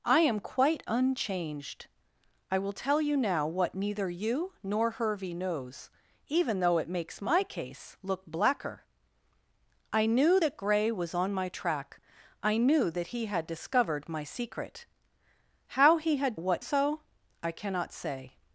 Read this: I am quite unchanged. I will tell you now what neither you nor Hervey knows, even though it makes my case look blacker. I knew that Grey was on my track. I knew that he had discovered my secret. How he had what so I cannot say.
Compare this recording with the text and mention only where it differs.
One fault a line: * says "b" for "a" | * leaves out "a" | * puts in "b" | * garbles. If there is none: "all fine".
all fine